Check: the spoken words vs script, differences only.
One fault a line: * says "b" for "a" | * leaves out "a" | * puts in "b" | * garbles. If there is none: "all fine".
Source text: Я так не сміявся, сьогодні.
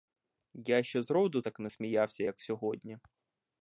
* puts in "ще зроду"
* puts in "як"